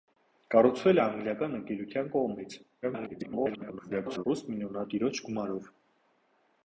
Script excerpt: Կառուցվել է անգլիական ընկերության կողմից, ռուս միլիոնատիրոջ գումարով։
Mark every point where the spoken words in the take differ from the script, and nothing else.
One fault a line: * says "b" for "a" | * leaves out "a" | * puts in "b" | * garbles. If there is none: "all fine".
* garbles